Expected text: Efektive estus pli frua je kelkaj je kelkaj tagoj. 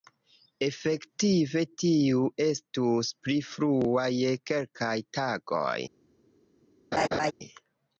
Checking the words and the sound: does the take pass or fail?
fail